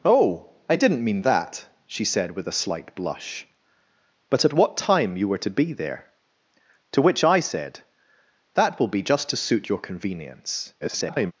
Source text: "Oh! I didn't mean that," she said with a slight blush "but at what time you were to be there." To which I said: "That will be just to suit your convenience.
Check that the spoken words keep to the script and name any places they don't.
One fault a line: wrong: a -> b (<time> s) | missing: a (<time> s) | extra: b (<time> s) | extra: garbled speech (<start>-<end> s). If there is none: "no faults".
extra: garbled speech (10.8-11.3 s)